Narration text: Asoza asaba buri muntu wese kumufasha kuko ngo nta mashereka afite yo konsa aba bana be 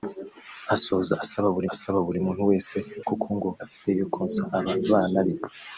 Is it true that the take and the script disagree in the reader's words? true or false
true